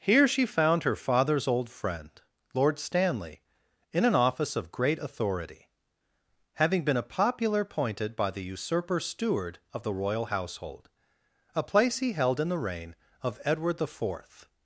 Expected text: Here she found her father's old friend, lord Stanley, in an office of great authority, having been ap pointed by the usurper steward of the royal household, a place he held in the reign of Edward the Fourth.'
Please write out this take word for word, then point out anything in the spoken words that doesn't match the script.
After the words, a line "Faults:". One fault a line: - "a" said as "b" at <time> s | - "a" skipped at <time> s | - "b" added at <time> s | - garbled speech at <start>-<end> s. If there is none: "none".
Here she found her father's old friend, lord Stanley, in an office of great authority, having been a popular appointed by the usurper steward of the royal household, a place he held in the reign of Edward the Fourth.'
Faults:
- "ap pointed" said as "a popular appointed" at 7.0 s